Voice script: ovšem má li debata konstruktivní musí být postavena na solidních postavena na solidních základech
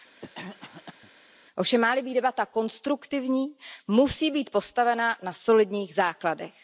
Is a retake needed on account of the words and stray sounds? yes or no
yes